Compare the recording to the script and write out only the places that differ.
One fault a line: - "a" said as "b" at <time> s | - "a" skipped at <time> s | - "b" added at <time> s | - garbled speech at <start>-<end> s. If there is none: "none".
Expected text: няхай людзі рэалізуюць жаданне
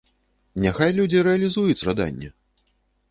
none